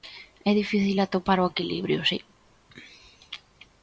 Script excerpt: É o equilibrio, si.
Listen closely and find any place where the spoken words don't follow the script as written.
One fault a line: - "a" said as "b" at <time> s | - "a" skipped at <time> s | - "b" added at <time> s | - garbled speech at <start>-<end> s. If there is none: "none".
- "difícil atopar" added at 0.6 s